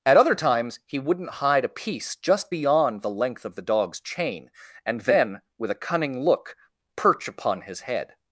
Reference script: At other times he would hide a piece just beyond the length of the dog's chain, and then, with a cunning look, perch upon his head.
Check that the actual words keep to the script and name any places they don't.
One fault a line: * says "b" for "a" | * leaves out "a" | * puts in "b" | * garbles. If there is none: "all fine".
* says "wouldn't" for "would"